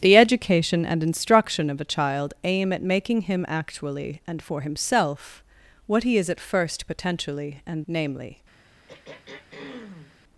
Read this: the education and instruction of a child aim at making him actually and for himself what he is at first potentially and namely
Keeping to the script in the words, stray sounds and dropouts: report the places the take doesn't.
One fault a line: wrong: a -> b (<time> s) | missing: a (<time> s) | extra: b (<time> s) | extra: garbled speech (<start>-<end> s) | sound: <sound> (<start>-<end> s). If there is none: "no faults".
sound: throat clearing (8.9-10.2 s)